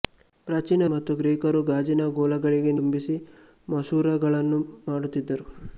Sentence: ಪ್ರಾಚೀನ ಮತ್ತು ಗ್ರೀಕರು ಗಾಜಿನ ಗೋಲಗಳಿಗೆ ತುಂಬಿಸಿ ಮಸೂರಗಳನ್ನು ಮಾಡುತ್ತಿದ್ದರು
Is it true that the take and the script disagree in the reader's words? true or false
false